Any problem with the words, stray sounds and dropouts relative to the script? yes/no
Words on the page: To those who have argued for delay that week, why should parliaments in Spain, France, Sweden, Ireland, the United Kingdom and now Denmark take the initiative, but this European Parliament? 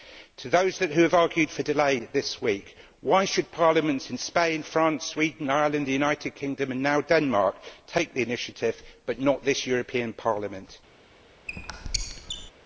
yes